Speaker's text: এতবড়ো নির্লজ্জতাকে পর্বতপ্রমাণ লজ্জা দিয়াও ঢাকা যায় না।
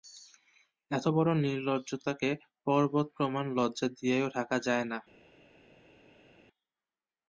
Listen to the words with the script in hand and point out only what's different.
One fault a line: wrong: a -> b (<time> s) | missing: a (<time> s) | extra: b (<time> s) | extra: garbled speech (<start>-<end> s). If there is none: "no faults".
no faults